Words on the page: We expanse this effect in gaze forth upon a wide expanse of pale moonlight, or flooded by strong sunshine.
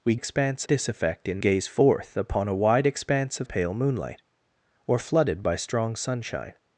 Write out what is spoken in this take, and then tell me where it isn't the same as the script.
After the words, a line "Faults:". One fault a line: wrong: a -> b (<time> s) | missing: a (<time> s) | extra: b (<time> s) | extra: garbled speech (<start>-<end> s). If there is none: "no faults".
We expanse this effect in gaze forth upon a wide expanse of pale moonlight, or flooded by strong sunshine.
Faults:
no faults